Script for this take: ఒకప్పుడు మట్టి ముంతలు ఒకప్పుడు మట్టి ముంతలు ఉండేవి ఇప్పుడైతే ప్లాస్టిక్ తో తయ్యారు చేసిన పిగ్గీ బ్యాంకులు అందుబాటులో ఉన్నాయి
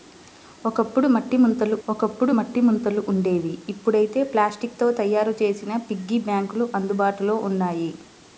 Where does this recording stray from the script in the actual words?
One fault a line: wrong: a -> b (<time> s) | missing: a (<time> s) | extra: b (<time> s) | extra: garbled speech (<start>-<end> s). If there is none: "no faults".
no faults